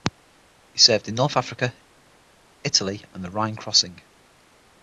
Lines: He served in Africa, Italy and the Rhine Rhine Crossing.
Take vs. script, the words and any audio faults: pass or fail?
fail